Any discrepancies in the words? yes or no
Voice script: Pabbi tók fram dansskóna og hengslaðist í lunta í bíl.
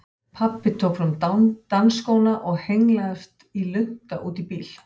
yes